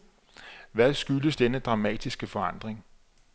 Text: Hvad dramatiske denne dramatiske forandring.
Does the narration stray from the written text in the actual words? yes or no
yes